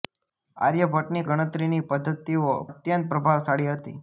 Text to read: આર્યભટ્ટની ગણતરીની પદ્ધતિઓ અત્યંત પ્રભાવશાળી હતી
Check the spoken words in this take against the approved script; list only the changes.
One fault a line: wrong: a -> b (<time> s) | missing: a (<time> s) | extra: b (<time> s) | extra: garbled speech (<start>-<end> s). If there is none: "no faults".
no faults